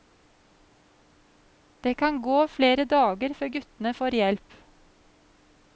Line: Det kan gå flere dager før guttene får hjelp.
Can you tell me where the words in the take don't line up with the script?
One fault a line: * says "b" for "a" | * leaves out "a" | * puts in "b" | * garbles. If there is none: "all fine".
all fine